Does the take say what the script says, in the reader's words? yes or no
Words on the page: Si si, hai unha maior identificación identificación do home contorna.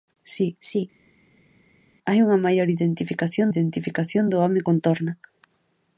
yes